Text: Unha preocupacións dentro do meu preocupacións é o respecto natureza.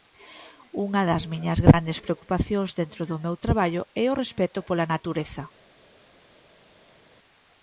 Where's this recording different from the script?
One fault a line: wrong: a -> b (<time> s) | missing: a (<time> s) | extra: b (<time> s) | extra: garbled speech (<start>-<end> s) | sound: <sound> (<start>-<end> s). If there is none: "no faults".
extra: das miñas grandes (1.1 s)
wrong: preocupacións -> traballo (3.5 s)
extra: pola (4.7 s)